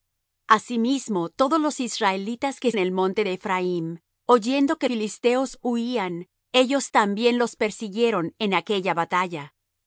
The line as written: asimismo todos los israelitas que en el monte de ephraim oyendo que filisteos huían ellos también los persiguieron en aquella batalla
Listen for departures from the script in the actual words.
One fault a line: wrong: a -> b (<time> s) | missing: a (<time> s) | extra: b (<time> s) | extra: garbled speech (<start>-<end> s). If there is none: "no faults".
no faults